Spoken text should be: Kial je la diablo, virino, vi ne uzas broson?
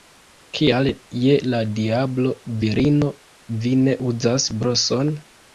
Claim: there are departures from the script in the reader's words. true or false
false